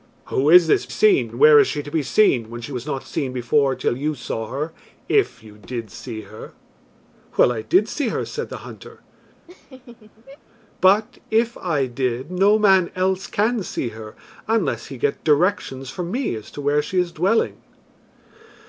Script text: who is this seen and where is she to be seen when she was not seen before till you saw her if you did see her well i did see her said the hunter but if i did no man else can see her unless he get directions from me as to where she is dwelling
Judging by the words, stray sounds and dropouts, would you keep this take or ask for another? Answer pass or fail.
fail